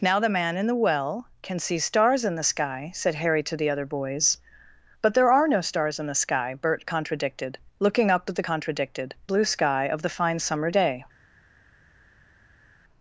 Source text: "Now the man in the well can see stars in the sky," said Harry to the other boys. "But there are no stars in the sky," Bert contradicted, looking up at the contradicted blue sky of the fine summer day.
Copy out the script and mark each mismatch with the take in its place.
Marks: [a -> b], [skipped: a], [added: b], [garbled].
"Now the man in the well can see stars in the sky," said Harry to the other boys. "But there are no stars in the sky," Bert contradicted, looking up at the contradicted blue sky of the fine summer day.